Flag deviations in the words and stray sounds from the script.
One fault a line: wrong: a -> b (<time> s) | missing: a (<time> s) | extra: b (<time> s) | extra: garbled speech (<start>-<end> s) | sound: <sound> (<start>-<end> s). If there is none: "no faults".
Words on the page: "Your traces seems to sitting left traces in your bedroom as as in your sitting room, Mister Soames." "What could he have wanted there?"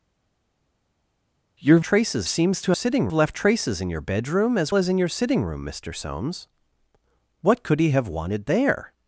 no faults